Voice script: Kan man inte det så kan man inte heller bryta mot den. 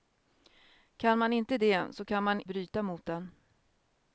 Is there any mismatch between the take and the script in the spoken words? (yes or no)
yes